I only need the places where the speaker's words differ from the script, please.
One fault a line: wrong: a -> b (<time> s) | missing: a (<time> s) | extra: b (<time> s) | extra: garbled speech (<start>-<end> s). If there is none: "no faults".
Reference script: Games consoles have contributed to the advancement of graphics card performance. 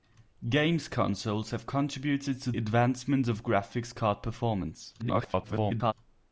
missing: the (2.5 s)
extra: garbled speech (5.0-5.9 s)